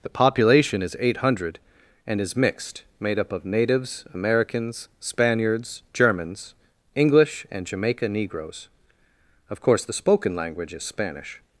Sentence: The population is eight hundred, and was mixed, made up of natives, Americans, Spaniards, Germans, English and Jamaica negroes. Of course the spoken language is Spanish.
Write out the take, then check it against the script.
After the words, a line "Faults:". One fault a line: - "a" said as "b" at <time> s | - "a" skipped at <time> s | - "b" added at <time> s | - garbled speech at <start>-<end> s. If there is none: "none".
The population is eight hundred, and is mixed, made up of natives, Americans, Spaniards, Germans, English and Jamaica negroes. Of course the spoken language is Spanish.
Faults:
- "was" said as "is" at 2.2 s